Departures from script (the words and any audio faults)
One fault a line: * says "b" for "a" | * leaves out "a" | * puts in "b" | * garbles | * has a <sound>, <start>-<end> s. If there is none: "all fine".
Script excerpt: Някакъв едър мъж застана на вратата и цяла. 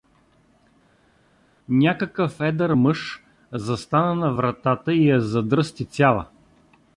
* puts in "я задръсти"